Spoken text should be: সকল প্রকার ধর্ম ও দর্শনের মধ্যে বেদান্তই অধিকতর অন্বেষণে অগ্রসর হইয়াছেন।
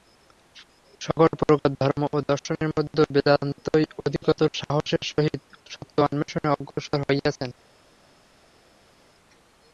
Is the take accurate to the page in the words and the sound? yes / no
no